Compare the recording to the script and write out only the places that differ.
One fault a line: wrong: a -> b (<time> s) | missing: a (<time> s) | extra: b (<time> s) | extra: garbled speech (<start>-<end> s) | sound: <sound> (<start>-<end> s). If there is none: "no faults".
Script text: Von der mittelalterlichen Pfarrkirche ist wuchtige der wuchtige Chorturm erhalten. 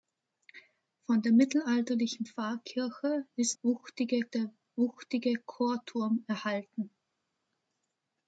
no faults